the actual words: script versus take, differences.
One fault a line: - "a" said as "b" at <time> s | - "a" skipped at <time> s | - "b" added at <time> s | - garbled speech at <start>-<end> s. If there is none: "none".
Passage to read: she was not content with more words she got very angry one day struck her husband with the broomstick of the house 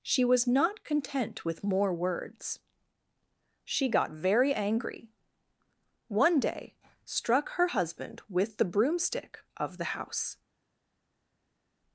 none